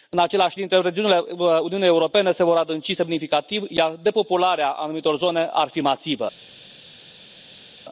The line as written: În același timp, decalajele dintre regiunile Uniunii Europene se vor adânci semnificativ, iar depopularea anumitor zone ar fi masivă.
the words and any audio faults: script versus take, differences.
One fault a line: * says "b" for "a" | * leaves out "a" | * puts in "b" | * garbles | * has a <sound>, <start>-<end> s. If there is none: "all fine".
* leaves out "timp decalajele"